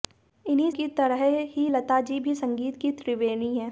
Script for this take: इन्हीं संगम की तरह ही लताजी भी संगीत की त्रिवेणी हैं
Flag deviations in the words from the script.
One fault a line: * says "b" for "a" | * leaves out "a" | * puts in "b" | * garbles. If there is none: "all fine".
* leaves out "संगम"